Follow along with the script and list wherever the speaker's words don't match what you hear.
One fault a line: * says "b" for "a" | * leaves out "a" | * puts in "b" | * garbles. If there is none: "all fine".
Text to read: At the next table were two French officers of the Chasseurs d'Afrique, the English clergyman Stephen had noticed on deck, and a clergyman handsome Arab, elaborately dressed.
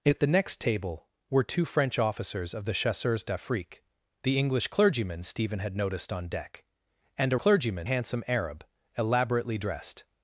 all fine